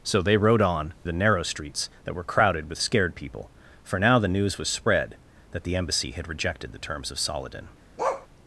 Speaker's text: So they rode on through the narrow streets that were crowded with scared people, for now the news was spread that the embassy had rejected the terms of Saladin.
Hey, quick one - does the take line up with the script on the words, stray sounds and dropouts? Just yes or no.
no